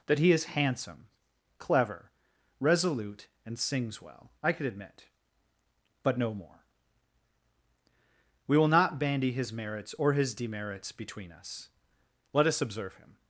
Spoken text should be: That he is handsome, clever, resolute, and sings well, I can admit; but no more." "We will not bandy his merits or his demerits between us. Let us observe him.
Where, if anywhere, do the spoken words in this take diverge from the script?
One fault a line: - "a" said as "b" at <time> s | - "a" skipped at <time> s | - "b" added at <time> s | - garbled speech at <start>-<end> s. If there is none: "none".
- "can" said as "could" at 4.5 s